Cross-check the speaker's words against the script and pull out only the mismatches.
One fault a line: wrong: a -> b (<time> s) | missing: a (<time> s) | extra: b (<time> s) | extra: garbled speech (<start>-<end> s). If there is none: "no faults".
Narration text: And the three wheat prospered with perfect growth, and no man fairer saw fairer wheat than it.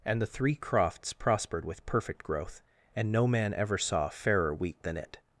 wrong: wheat -> crofts (0.6 s)
wrong: fairer -> ever (3.5 s)